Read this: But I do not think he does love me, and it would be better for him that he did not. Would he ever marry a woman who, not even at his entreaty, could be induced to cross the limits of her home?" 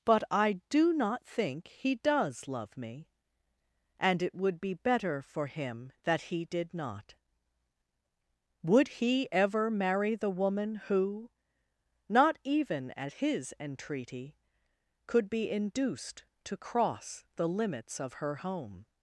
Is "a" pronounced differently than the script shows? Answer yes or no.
yes